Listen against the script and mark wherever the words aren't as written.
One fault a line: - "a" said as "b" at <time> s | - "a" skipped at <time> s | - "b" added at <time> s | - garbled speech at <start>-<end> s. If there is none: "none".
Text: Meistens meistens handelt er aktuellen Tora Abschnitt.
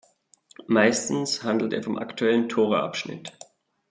- "meistens" skipped at 1.4 s
- "vom" added at 1.8 s